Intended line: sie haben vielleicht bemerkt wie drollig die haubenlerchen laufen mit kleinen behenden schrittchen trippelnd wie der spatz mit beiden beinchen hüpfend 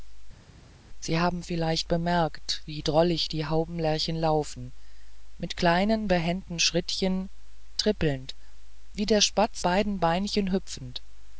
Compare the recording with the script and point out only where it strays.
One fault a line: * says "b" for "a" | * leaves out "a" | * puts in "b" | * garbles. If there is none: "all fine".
* leaves out "mit"